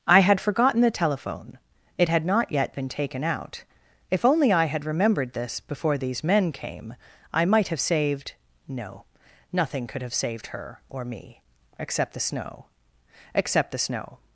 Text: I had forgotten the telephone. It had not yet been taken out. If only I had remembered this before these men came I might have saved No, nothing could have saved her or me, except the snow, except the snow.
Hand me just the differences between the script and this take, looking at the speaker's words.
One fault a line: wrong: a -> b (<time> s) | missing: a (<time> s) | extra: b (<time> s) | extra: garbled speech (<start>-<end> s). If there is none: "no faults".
no faults